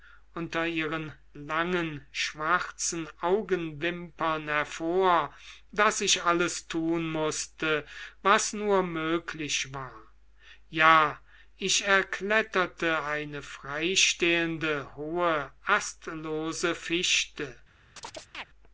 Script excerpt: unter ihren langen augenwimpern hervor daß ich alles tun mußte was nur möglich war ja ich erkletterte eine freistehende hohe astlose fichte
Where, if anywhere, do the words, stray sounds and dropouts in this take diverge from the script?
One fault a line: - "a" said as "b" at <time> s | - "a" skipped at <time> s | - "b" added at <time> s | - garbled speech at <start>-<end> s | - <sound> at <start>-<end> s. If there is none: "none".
- "schwarzen" added at 2.1 s
- chirp at 18.0-18.4 s